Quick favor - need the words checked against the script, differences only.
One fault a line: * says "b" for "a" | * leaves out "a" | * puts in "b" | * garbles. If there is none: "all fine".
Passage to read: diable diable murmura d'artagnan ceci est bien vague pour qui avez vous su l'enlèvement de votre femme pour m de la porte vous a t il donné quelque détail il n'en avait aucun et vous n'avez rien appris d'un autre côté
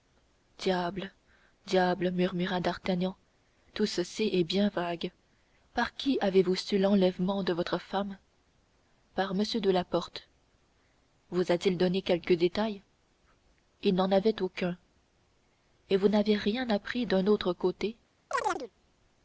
* puts in "tout"
* says "par" for "pour"
* says "par" for "pour"